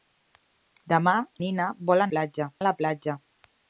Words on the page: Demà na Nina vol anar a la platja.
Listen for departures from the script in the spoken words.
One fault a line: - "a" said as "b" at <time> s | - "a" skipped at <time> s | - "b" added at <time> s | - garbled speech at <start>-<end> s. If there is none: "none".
- "na" skipped at 1.1 s
- "anar" said as "platja" at 2.2 s